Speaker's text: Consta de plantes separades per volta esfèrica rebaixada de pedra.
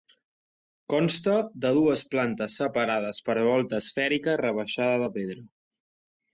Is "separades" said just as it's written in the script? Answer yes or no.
yes